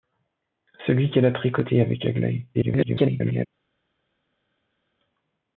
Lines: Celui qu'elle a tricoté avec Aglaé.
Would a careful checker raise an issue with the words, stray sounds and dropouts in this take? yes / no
yes